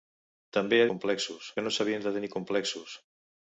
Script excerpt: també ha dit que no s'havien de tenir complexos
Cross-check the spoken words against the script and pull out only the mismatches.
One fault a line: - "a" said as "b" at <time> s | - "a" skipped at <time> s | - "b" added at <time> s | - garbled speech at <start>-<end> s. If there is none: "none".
- "dit" said as "complexos" at 0.9 s